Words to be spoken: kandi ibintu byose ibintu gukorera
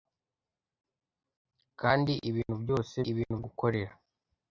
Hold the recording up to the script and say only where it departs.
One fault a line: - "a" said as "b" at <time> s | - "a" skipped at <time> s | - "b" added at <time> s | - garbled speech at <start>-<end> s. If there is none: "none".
none